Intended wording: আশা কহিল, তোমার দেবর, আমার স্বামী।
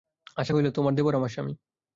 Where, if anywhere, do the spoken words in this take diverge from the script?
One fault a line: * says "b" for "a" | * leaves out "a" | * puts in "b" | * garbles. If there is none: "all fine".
all fine